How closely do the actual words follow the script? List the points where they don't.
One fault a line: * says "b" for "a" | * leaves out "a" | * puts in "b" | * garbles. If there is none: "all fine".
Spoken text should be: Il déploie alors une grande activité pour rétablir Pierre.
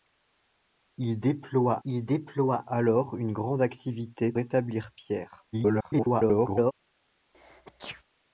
* puts in "il déploie"
* leaves out "pour"
* garbles